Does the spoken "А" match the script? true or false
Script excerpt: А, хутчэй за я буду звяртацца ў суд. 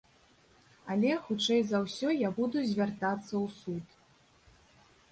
false